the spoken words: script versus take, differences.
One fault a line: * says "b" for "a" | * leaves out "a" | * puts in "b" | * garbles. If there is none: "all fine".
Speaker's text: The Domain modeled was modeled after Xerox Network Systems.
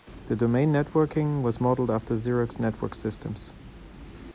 * says "networking" for "modeled"